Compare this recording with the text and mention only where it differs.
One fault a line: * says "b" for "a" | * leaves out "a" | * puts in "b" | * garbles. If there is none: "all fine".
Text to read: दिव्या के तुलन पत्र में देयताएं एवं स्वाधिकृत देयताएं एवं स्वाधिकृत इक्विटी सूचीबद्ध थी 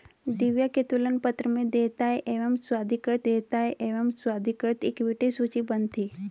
all fine